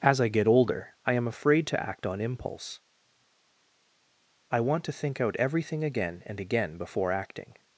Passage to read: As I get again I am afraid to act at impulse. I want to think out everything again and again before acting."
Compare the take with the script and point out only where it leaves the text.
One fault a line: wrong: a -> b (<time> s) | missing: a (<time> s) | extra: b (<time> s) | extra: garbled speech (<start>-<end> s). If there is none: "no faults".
wrong: again -> older (0.5 s)
wrong: at -> on (2.1 s)